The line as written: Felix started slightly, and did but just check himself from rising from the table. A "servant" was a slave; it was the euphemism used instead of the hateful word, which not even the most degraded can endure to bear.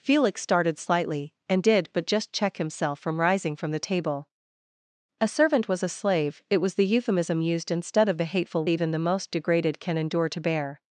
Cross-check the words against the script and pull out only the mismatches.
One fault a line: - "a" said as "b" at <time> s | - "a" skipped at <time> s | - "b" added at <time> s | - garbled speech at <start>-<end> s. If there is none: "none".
- "word which not" skipped at 8.7 s